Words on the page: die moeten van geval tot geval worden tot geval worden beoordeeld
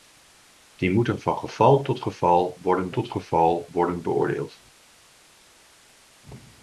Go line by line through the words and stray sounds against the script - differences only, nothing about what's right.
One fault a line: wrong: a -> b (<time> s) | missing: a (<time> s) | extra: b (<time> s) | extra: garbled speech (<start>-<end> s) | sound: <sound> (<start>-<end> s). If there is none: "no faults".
no faults